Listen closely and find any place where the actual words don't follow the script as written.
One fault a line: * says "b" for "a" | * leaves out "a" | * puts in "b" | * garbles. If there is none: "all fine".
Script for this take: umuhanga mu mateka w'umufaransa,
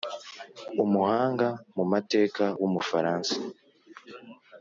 all fine